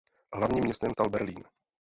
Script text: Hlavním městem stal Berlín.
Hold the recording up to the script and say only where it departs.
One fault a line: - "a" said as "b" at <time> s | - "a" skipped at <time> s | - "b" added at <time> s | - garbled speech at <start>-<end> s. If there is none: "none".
none